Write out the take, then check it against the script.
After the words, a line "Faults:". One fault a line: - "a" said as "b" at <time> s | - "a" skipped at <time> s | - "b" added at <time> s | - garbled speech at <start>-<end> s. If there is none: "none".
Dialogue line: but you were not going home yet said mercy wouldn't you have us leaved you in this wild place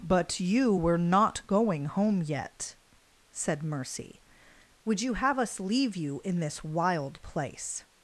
but you were not going home yet said mercy would you have us leave you in this wild place
Faults:
- "wouldn't" said as "would" at 4.8 s
- "leaved" said as "leave" at 5.6 s